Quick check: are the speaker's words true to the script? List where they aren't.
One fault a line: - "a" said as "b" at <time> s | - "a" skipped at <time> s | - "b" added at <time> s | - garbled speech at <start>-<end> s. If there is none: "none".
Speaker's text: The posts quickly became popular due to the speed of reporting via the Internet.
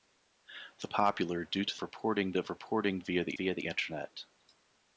- "posts quickly became" skipped at 0.9 s
- "speed" said as "reporting" at 1.8 s
- "via the" added at 3.3 s